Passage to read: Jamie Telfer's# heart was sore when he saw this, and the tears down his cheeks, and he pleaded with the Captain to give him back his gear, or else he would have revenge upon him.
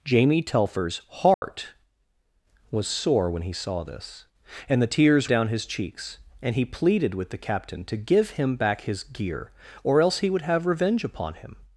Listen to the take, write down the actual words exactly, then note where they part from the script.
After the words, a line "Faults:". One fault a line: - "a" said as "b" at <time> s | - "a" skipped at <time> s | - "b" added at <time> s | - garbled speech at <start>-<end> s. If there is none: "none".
Jamie Telfer's# heart was sore when he saw this, and the tears down his cheeks, and he pleaded with the Captain to give him back his gear, or else he would have revenge upon him.
Faults:
none